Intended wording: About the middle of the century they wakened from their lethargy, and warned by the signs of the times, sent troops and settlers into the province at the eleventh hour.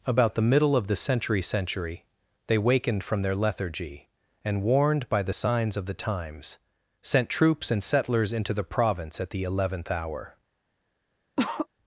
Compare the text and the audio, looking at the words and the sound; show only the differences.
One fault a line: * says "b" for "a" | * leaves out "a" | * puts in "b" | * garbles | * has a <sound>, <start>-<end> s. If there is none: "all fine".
* puts in "century"
* has a cough, 11.4-11.7 s